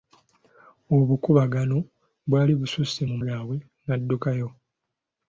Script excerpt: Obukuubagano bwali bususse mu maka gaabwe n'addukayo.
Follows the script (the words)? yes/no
no